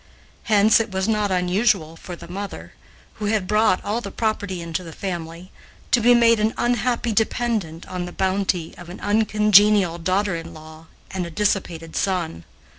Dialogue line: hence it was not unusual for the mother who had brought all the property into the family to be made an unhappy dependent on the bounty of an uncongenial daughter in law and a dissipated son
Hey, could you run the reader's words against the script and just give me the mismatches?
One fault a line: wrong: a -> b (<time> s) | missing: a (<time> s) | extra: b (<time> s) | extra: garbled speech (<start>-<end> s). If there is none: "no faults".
no faults